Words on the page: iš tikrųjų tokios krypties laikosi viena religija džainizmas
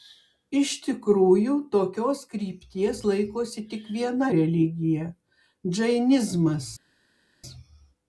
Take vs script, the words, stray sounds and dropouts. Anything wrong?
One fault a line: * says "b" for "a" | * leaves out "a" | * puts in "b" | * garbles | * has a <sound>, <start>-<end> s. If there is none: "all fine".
* puts in "tik"